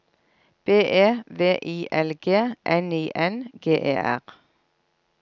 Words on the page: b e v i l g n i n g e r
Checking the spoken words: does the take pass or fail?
pass